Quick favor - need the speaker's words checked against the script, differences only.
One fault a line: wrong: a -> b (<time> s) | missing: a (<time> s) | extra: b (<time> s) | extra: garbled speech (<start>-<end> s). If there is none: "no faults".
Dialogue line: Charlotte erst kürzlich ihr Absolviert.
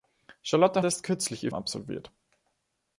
no faults